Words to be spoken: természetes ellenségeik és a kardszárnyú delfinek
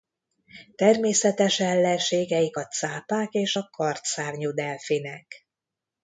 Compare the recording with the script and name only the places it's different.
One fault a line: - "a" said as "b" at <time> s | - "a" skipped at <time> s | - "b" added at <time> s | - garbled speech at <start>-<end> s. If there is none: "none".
- "a cápák" added at 2.5 s